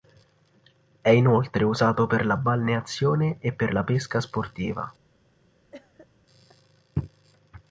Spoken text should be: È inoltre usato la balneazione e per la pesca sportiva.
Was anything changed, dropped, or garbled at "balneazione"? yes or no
no